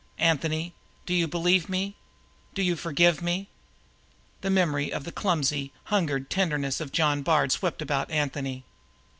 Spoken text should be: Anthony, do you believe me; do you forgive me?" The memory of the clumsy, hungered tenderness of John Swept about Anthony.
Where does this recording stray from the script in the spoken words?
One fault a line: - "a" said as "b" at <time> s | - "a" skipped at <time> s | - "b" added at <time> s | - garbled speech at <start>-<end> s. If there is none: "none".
- "Bard" added at 7.2 s